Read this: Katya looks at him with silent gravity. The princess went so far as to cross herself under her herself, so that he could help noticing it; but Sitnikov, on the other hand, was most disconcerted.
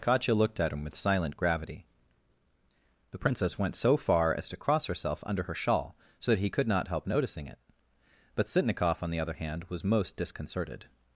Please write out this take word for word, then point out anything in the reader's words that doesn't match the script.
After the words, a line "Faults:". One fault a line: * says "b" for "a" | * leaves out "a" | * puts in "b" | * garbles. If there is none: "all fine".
Katya looked at him with silent gravity. The princess went so far as to cross herself under her shawl, so that he could not help noticing it; but Sitnikov, on the other hand, was most disconcerted.
Faults:
* says "looked" for "looks"
* says "shawl" for "herself"
* puts in "not"